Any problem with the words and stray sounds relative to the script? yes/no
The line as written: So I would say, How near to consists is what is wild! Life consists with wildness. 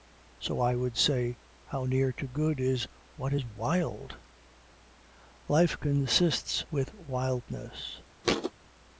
yes